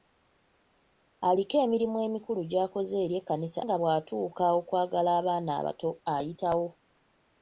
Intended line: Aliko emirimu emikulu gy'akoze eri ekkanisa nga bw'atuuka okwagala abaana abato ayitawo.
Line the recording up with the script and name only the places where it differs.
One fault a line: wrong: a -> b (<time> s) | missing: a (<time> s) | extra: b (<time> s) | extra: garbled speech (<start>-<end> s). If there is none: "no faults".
no faults